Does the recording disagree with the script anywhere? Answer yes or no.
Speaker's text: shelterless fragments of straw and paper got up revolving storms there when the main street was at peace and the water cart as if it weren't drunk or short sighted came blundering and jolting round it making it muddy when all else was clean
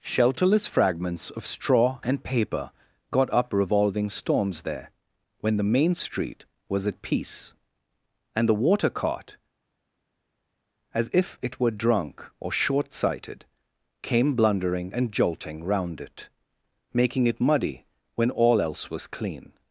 yes